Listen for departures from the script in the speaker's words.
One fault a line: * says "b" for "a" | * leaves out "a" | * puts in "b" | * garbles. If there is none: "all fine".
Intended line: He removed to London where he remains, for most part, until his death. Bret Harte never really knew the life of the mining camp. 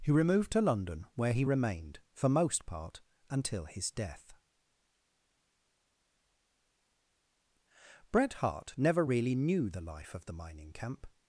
* says "remained" for "remains"